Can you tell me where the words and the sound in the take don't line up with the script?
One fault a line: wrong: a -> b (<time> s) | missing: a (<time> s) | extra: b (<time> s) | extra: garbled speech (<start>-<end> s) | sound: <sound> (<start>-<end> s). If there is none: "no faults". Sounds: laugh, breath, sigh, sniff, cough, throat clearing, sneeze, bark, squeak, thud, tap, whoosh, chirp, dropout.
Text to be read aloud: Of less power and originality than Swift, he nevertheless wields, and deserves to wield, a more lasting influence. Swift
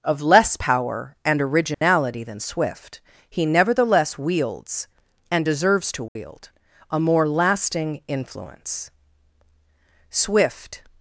sound: dropout (1.7-1.8 s)
sound: dropout (6.1-6.2 s)